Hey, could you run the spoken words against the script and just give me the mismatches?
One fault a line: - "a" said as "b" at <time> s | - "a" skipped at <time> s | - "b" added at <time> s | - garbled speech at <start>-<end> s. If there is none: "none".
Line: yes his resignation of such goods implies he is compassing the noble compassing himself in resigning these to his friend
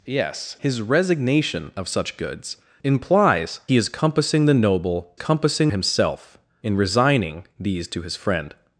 none